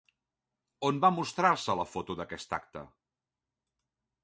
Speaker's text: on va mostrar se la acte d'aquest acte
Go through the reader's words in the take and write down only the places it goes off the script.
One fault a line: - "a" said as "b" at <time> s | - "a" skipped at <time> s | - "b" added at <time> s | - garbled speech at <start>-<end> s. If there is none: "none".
- "acte" said as "foto" at 1.9 s